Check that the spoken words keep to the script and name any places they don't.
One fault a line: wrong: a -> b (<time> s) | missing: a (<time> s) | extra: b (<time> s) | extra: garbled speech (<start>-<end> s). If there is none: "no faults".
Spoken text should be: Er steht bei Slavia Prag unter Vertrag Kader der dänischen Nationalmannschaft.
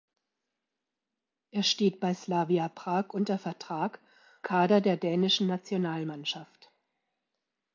no faults